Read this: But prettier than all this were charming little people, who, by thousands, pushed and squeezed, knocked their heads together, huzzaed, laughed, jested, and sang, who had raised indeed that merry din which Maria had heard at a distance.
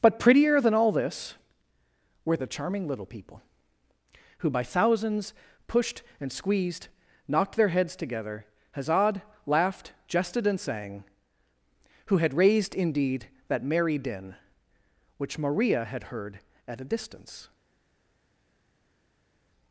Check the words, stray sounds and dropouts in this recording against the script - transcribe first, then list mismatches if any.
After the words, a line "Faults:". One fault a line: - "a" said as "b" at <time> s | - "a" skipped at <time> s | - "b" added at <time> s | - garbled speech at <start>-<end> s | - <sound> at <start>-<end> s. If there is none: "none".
But prettier than all this were the charming little people, who, by thousands, pushed and squeezed, knocked their heads together, huzzaed, laughed, jested, and sang, who had raised indeed that merry din which Maria had heard at a distance.
Faults:
- "the" added at 2.4 s